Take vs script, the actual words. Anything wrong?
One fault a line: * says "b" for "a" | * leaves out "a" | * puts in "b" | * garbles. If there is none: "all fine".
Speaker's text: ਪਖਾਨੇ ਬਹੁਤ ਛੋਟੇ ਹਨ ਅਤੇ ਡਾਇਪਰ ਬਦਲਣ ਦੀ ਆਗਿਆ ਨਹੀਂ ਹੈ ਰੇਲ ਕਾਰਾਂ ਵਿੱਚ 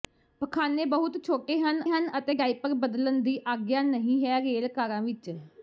* puts in "ਹਨ"